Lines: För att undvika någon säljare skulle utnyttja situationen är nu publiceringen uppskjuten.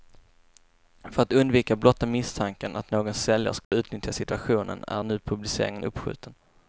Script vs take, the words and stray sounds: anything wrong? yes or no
yes